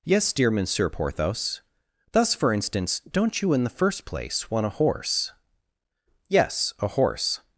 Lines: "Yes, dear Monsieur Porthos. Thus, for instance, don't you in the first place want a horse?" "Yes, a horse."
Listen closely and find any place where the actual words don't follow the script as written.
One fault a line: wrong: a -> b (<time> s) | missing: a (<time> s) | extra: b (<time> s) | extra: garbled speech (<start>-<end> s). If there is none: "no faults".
no faults